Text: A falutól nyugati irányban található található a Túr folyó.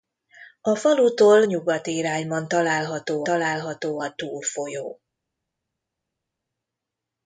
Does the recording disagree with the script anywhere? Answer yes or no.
no